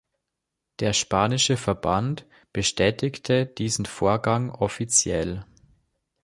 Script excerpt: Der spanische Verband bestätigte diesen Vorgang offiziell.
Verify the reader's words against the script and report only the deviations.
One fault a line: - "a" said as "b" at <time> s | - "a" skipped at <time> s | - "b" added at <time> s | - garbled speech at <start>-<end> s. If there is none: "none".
none